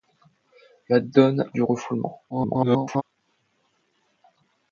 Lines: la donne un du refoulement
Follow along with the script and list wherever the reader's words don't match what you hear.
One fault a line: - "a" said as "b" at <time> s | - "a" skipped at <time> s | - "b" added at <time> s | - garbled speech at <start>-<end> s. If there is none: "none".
- "un" skipped at 1.5 s
- garbled speech at 2.3-3.0 s